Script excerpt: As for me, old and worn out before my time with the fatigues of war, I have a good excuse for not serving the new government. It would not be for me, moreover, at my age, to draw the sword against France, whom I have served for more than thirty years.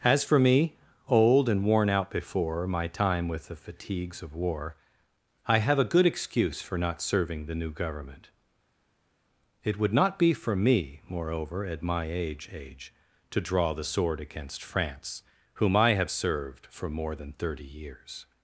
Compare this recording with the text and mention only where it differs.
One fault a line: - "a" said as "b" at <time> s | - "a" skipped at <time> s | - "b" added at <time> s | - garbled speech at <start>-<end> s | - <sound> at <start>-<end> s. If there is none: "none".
- "age" added at 12.5 s